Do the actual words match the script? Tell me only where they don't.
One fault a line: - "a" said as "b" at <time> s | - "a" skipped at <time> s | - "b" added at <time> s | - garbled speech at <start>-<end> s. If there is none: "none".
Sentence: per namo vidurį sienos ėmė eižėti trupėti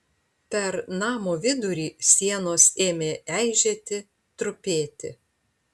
none